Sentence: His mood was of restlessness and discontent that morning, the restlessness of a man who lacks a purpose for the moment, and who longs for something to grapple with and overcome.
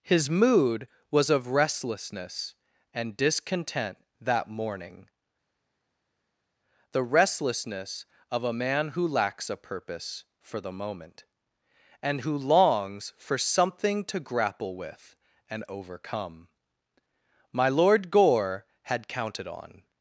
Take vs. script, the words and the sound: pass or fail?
fail